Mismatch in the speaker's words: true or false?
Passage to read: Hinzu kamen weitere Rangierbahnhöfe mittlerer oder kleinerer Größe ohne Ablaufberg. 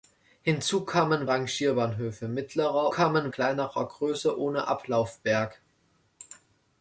true